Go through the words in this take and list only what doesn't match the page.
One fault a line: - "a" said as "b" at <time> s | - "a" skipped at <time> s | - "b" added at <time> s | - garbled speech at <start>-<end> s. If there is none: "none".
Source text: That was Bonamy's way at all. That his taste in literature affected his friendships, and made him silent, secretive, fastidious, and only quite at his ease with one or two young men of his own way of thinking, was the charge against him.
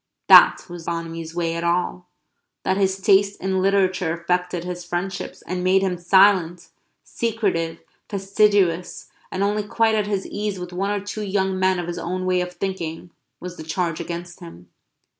none